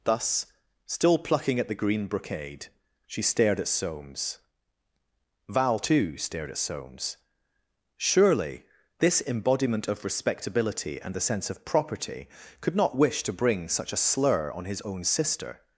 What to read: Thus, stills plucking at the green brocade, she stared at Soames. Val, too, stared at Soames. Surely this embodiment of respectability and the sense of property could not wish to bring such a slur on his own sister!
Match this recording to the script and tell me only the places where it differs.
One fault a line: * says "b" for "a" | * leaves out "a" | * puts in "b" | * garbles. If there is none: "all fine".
* says "still" for "stills"